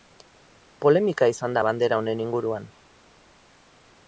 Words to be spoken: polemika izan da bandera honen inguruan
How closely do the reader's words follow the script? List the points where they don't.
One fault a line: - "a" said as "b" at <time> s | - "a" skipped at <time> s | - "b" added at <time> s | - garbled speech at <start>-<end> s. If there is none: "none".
none